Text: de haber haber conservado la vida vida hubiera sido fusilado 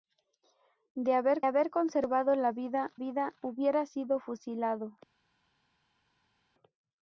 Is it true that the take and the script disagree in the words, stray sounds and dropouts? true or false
false